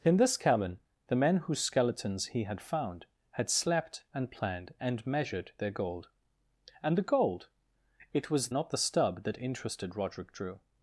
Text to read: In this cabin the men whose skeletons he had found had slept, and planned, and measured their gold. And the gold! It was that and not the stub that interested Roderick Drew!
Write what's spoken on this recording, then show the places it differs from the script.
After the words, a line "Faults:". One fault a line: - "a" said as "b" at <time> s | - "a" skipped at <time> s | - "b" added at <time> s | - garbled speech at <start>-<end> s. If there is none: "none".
In this cabin the men whose skeletons he had found had slept, and planned, and measured their gold. And the gold! It was not the stub that interested Roderick Drew!
Faults:
- "that and" skipped at 8.5 s